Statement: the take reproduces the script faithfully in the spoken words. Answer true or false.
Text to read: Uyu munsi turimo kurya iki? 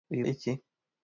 false